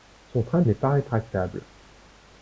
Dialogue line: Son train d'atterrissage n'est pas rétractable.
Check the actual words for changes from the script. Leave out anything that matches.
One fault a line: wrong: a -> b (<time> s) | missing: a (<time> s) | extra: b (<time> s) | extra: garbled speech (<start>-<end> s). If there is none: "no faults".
missing: d'atterrissage (0.6 s)